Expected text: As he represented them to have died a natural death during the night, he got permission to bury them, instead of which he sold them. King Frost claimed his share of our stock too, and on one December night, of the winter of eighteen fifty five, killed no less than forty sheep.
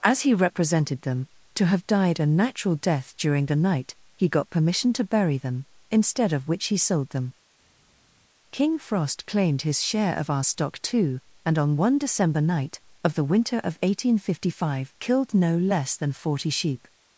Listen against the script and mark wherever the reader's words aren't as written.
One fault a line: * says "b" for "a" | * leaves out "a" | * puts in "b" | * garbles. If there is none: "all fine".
all fine